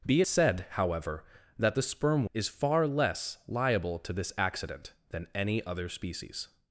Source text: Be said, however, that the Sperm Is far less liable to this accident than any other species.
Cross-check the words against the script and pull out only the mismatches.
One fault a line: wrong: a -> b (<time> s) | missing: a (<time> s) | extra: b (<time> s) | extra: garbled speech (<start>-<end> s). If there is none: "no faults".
no faults